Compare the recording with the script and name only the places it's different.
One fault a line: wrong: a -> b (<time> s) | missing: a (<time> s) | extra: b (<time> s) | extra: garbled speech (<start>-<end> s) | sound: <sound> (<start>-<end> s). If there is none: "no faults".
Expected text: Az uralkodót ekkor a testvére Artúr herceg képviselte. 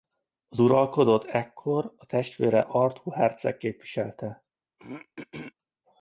sound: throat clearing (4.8-5.5 s)